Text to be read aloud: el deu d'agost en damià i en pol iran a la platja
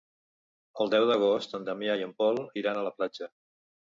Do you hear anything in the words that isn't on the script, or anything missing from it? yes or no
no